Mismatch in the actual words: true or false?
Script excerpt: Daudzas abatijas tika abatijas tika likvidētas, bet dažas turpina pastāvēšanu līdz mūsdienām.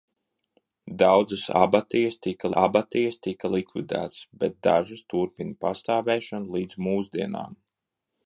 false